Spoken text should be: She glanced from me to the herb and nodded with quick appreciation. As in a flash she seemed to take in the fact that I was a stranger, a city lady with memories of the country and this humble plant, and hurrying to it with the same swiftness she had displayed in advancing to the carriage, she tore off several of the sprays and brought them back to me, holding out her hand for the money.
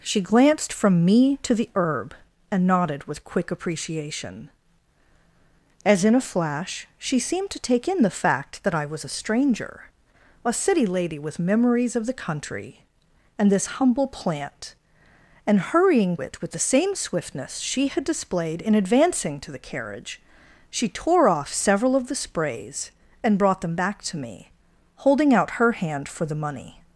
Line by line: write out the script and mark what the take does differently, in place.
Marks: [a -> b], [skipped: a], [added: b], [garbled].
She glanced from me to the herb and nodded with quick appreciation. As in a flash she seemed to take in the fact that I was a stranger, a city lady with memories of the country and this humble plant, and hurrying [skipped: to] it with the same swiftness she had displayed in advancing to the carriage, she tore off several of the sprays and brought them back to me, holding out her hand for the money.